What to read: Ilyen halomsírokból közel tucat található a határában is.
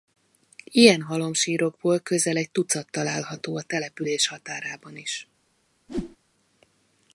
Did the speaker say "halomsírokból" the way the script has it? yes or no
yes